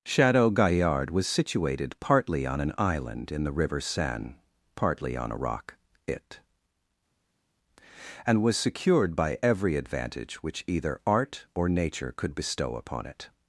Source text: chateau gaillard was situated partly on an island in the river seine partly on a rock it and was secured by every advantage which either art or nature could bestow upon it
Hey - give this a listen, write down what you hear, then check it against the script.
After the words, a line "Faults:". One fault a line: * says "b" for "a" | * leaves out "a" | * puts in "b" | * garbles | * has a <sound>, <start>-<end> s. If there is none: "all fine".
chateau gaillard was situated partly on an island in the river seine partly on a rock it and was secured by every advantage which either art or nature could bestow upon it
Faults:
all fine